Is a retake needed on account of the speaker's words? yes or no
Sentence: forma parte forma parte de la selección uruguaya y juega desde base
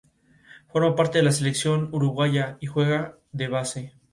yes